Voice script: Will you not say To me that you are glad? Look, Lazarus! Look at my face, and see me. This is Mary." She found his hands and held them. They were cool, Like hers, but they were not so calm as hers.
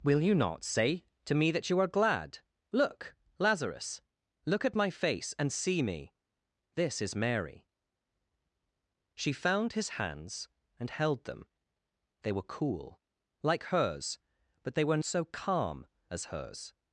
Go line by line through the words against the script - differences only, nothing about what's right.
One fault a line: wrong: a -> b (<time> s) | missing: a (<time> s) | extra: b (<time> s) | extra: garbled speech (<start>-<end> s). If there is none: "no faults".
missing: not (15.0 s)